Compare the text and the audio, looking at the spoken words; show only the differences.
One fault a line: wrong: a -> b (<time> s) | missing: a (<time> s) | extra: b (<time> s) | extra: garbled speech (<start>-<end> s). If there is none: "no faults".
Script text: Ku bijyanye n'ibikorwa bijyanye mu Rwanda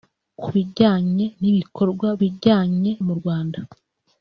no faults